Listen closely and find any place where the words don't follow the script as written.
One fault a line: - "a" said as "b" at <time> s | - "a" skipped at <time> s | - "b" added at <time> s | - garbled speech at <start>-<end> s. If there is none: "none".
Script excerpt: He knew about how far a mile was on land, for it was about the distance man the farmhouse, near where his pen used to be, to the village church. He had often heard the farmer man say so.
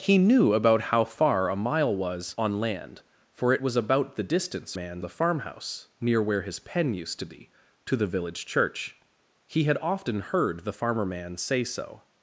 none